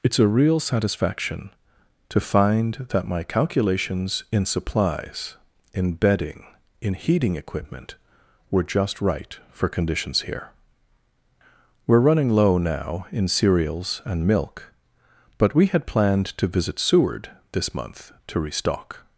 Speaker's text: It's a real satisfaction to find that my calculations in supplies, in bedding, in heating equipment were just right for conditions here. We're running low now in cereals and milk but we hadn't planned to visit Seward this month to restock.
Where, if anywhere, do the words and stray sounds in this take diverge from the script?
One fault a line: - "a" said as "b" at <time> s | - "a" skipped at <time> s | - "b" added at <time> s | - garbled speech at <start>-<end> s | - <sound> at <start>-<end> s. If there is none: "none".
- "hadn't" said as "had" at 15.7 s